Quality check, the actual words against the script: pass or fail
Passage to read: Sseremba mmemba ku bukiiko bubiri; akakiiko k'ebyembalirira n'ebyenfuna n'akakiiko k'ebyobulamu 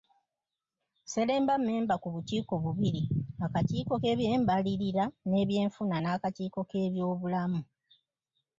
pass